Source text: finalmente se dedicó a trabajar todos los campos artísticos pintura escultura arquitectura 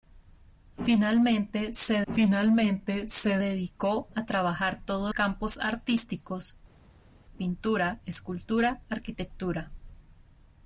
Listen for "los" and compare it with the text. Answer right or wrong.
wrong